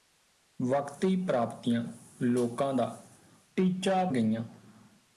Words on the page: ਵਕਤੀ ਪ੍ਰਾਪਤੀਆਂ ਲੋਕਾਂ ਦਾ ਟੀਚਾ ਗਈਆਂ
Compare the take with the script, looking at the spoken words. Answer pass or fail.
pass